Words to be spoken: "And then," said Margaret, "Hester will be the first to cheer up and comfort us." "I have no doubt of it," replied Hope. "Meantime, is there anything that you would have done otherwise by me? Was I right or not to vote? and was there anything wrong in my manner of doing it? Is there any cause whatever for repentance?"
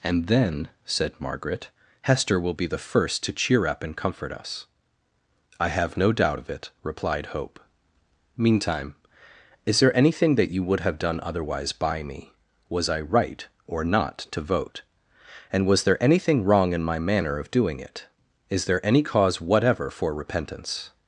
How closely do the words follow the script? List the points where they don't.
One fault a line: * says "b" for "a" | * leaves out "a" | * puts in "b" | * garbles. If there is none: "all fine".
all fine